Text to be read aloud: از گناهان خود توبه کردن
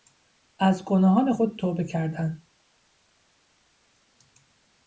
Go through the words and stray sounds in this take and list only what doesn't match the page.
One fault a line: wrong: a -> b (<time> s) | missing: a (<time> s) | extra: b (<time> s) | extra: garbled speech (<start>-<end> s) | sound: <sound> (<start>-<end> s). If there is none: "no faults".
no faults